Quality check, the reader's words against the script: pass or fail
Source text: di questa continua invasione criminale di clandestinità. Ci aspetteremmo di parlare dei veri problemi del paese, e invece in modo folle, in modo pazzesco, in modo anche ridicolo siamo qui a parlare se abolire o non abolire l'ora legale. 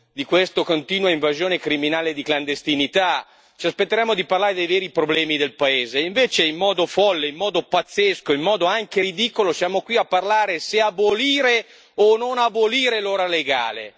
pass